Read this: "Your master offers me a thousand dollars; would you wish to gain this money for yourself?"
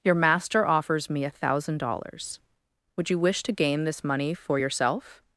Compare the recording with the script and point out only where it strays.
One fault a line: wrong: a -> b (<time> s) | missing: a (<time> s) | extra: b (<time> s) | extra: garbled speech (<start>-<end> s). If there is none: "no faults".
no faults